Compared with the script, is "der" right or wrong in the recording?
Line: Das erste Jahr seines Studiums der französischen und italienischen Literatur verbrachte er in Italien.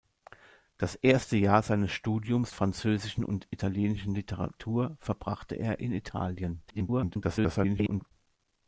wrong